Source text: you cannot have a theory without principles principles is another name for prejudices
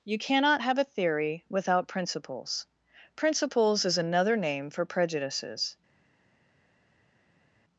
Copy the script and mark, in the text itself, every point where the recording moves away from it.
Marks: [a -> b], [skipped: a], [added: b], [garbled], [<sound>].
you cannot have a theory without principles principles is another name for prejudices